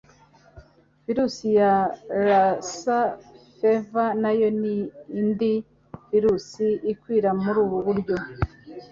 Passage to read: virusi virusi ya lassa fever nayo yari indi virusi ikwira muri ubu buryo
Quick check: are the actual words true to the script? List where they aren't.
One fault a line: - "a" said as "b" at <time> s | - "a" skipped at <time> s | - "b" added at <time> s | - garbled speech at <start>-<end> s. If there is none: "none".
- "virusi" skipped at 1.5 s
- "yari" said as "ni" at 4.6 s